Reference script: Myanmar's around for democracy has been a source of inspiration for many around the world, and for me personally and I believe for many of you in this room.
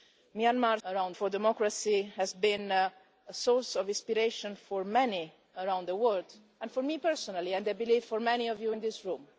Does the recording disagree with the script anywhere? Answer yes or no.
no